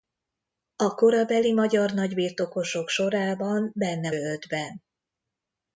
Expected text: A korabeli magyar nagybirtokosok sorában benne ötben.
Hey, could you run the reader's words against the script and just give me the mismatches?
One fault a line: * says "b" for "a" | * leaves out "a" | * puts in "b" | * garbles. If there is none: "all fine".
all fine